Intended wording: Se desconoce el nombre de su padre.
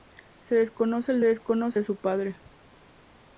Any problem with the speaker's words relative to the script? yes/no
yes